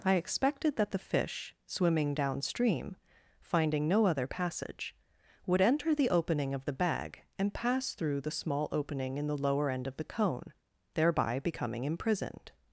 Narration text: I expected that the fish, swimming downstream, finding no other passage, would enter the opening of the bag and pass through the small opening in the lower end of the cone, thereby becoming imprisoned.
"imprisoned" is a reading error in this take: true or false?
false